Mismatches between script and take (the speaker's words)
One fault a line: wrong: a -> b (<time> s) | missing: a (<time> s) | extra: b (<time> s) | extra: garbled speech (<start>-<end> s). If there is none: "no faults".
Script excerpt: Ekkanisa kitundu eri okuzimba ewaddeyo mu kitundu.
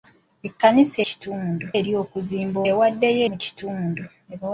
no faults